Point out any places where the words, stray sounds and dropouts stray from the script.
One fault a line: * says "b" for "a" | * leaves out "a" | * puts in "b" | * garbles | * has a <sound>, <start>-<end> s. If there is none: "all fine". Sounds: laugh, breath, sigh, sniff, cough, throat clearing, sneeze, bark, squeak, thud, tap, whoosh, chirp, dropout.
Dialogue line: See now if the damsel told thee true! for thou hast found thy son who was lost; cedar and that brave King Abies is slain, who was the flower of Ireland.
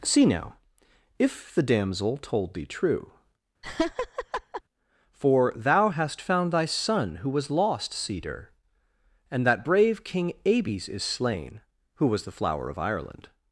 * has a laugh, 3.6-4.6 s